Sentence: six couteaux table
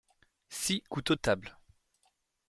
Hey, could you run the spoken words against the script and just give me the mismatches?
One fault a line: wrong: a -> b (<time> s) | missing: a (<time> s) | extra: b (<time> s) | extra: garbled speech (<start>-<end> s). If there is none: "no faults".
no faults